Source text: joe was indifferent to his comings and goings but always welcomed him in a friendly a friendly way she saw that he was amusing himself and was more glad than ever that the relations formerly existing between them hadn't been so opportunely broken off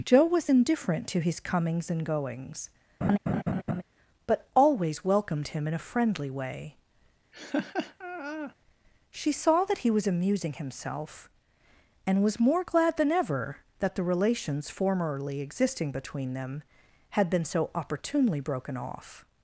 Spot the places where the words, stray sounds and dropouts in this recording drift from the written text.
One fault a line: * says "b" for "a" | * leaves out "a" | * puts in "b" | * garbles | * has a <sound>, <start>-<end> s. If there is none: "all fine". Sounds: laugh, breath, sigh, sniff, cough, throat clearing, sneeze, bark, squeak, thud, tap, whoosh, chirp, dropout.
* has a laugh, 3.0-3.8 s
* leaves out "a friendly"
* has a laugh, 7.3-8.5 s
* says "had" for "hadn't"